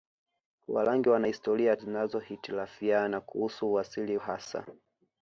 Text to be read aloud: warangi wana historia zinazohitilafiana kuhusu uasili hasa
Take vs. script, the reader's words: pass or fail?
pass